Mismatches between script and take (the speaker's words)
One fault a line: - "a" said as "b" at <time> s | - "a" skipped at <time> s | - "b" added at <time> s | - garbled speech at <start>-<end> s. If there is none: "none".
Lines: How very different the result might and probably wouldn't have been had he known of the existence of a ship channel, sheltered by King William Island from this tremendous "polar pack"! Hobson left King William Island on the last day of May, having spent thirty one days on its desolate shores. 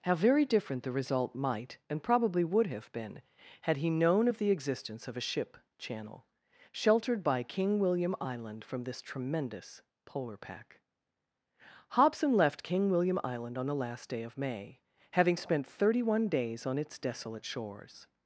- "wouldn't" said as "would" at 2.4 s